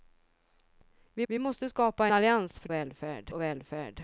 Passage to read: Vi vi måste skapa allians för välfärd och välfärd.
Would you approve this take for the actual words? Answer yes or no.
yes